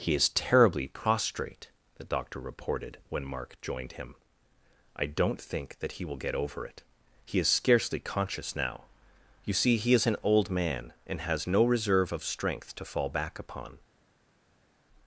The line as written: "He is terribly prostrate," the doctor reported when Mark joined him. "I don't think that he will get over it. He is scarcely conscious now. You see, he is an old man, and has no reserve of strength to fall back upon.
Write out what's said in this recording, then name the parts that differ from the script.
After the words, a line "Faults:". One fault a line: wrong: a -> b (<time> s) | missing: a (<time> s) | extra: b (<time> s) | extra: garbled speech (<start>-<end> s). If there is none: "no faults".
"He is terribly prostrate," the doctor reported when Mark joined him. "I don't think that he will get over it. He is scarcely conscious now. You see, he is an old man, and has no reserve of strength to fall back upon.
Faults:
no faults